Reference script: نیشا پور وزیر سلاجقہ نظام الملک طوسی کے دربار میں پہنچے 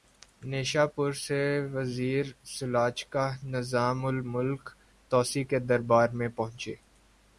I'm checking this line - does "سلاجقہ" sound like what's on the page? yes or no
yes